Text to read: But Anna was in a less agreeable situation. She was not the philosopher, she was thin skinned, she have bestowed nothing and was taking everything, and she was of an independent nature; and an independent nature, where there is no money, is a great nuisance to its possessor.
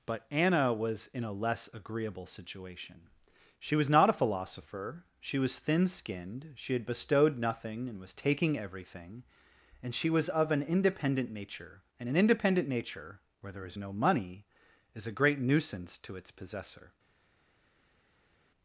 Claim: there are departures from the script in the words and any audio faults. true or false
true